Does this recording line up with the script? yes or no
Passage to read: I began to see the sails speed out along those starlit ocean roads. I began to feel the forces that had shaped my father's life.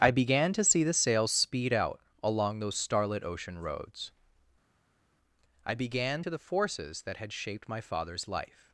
no